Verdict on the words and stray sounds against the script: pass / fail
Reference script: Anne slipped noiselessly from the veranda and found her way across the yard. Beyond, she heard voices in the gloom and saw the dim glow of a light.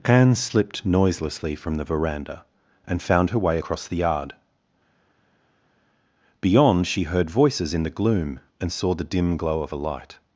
pass